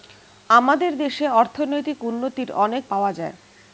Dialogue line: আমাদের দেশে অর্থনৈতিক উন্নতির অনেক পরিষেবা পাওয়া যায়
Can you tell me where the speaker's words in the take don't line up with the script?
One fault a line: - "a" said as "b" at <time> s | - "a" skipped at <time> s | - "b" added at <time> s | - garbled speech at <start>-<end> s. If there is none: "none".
- "পরিষেবা" skipped at 2.8 s